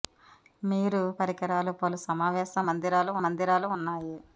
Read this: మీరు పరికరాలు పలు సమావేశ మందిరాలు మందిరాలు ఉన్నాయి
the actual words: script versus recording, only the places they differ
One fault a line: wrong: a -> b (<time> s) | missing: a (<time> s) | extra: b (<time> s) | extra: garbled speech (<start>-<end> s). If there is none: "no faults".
no faults